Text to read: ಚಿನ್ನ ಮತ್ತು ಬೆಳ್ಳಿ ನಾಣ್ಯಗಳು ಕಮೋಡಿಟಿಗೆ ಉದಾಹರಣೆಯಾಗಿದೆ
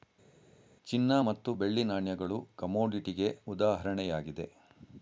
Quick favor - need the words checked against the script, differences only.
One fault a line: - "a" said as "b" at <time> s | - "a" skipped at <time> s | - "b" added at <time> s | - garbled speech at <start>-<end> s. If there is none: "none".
none